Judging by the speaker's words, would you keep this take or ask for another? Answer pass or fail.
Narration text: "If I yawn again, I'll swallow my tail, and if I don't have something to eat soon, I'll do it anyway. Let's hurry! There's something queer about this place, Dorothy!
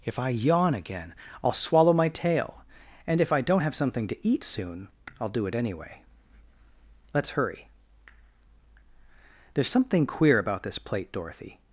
fail